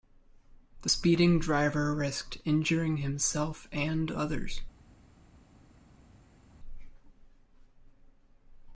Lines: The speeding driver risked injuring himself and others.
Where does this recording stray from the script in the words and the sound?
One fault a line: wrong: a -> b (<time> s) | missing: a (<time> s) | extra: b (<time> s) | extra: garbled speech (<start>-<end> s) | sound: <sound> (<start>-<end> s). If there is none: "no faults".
no faults